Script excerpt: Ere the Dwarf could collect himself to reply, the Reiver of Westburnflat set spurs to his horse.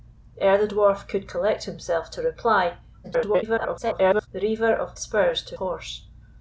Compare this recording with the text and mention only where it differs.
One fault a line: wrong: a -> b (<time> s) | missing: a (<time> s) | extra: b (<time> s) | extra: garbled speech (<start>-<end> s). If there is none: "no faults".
extra: garbled speech (3.0-4.3 s)
missing: Westburnflat set (4.9 s)
missing: his (5.6 s)